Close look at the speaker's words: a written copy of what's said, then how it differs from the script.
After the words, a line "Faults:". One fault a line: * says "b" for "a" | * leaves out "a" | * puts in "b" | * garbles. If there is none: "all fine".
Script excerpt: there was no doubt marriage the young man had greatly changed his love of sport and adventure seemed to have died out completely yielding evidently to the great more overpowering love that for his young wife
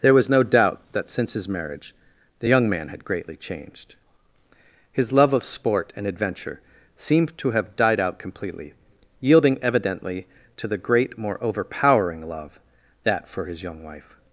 there was no doubt that since his marriage the young man had greatly changed his love of sport and adventure seemed to have died out completely yielding evidently to the great more overpowering love that for his young wife
Faults:
* puts in "that since his"